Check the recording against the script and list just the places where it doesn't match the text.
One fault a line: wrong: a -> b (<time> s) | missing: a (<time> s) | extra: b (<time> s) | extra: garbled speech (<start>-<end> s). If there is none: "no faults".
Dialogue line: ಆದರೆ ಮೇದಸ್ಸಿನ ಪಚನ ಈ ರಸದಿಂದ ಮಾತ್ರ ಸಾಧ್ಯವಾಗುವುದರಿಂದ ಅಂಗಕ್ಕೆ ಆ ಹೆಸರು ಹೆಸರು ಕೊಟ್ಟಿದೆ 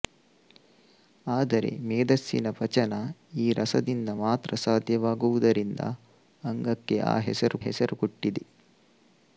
no faults